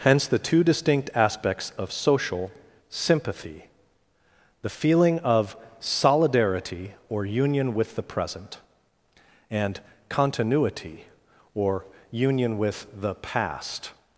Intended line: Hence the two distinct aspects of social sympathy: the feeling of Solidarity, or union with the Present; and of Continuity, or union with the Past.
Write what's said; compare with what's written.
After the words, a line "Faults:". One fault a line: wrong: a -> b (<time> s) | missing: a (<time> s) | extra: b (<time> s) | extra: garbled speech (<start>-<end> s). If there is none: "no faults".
Hence the two distinct aspects of social sympathy: the feeling of Solidarity, or union with the Present; and Continuity, or union with the Past.
Faults:
missing: of (9.8 s)